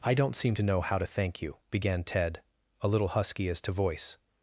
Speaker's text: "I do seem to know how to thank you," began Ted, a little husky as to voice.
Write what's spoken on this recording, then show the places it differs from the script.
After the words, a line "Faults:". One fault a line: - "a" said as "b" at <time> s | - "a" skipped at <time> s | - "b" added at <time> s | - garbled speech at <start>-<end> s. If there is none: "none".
"I don't seem to know how to thank you," began Ted, a little husky as to voice.
Faults:
- "do" said as "don't" at 0.1 s